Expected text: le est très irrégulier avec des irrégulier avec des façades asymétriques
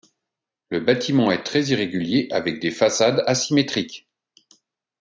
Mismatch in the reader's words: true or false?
true